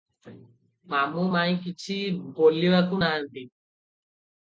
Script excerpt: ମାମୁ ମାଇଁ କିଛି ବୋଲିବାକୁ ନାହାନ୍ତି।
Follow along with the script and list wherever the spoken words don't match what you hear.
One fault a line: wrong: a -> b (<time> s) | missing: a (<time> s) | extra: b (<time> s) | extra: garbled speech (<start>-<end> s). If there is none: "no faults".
no faults